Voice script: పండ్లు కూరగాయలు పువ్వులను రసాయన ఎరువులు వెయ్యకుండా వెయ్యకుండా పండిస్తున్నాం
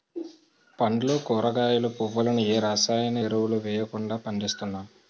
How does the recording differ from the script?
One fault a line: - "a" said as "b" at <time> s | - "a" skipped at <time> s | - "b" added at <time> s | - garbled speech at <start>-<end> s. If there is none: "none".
- "ఏ" added at 2.5 s
- "వెయ్యకుండా" skipped at 4.2 s